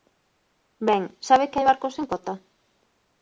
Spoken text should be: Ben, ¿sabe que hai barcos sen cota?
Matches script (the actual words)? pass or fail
pass